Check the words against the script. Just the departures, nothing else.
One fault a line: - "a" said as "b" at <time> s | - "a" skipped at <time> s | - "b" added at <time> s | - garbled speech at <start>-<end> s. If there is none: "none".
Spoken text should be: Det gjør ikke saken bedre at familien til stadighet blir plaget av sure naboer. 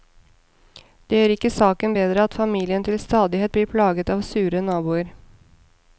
none